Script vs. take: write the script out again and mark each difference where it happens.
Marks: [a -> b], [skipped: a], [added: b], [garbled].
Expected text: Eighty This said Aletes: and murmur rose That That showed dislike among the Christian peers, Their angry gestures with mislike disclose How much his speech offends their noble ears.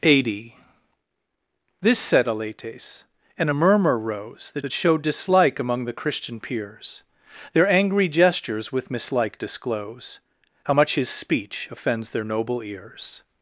Eighty This said Aletes: and murmur rose That That showed dislike among the Christian peers, Their angry gestures with mislike disclose How much his speech offends their noble ears.